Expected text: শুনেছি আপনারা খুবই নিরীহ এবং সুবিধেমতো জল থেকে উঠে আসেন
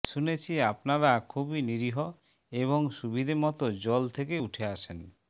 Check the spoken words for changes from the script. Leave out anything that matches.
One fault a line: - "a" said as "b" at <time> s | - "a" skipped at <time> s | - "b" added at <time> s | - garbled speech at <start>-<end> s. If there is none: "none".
none